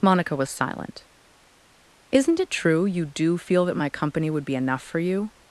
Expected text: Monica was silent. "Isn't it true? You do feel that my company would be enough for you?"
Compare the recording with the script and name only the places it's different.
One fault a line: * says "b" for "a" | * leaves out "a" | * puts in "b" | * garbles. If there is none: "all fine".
all fine